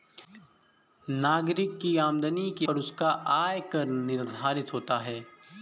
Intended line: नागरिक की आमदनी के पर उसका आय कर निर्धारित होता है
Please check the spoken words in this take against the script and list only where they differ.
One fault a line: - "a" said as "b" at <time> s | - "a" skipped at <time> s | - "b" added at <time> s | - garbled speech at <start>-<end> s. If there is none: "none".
none